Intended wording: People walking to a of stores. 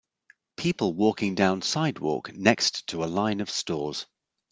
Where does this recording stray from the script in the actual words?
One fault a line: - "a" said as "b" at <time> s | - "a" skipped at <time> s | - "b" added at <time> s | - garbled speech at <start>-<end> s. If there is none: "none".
- "down sidewalk next" added at 1.4 s
- "line" added at 3.0 s